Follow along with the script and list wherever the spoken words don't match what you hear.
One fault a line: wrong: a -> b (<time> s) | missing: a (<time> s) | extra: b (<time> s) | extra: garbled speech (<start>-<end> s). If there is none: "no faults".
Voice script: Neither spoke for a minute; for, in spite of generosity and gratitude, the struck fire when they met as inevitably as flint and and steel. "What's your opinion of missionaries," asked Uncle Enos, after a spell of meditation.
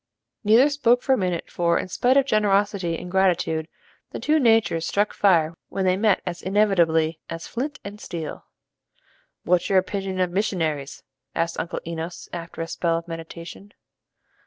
extra: two natures (4.2 s)
missing: and (8.0 s)